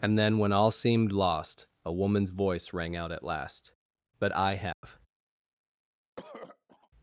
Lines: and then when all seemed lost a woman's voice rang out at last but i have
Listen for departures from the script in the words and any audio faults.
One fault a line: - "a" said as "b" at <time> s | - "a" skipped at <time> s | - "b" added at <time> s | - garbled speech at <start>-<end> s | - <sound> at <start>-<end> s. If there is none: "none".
- dropout at 4.7-4.8 s
- throat clearing at 6.2-6.9 s